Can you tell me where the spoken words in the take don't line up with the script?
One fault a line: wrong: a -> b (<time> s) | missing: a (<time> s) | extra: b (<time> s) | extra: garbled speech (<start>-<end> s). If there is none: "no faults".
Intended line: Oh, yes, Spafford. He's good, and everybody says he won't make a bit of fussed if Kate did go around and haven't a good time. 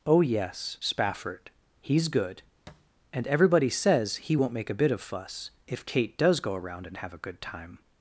wrong: fussed -> fuss (5.0 s)
wrong: did -> does (6.2 s)
wrong: haven't -> have (7.0 s)